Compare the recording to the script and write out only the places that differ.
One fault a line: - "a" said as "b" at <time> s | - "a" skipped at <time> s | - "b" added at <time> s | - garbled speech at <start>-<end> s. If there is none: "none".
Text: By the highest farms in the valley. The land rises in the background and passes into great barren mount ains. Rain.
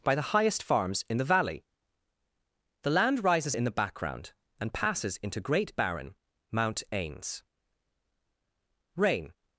none